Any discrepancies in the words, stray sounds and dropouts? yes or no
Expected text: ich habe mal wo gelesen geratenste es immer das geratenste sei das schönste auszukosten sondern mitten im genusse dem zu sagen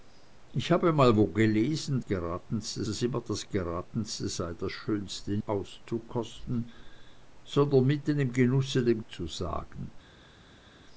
no